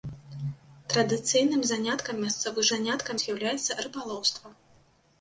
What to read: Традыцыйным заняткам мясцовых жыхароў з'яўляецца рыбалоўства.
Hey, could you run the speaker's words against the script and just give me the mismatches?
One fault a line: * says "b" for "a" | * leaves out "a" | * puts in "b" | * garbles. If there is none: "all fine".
* says "заняткам" for "жыхароў"